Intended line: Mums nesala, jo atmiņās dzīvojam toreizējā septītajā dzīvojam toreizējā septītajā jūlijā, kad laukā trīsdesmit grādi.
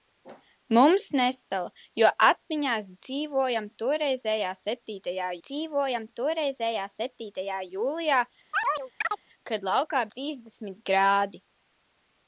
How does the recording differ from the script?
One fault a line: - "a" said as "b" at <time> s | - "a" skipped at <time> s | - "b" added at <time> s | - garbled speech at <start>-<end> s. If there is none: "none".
none